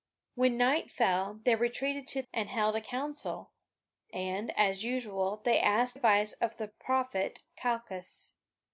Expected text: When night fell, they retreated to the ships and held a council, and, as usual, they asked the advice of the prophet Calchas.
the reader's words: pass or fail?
fail